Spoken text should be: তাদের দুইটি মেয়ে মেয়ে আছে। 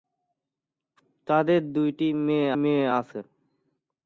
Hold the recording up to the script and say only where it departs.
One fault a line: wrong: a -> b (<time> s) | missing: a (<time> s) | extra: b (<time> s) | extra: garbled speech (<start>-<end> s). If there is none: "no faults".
no faults